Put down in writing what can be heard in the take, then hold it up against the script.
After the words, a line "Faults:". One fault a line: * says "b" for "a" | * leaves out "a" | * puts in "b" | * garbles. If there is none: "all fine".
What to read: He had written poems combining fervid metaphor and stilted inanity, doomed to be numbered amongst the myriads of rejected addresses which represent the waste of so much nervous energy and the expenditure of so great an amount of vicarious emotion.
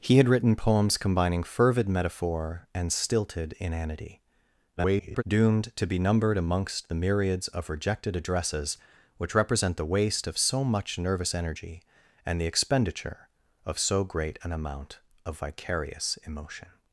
He had written poems combining fervid metaphor and stilted inanity, [garbled] doomed to be numbered amongst the myriads of rejected addresses which represent the waste of so much nervous energy and the expenditure of so great an amount of vicarious emotion.
Faults:
* garbles